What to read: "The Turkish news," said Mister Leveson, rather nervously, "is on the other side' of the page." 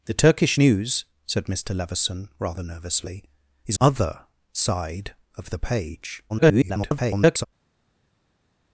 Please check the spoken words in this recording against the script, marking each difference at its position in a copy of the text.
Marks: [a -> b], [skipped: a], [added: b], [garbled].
"The Turkish news," said Mister Leveson, rather nervously, "is [skipped: on the] other side' of the page." [garbled]